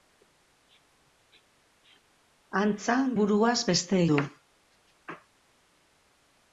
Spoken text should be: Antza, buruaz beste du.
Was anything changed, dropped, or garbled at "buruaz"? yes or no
no